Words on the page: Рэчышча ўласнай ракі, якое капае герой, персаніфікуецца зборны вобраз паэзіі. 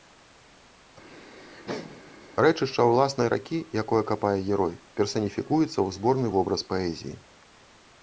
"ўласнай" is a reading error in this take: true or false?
false